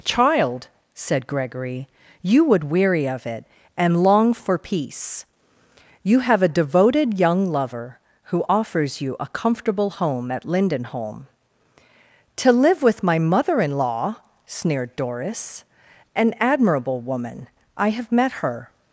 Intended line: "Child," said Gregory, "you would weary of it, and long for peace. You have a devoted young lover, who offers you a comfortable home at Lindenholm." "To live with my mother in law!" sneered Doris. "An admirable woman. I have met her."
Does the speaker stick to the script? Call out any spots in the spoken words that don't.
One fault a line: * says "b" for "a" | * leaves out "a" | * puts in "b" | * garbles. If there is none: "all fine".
all fine